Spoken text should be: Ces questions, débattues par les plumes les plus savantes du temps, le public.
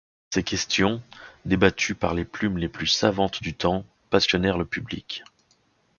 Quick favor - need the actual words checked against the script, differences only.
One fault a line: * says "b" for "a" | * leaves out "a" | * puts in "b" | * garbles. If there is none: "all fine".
* puts in "passionnèrent"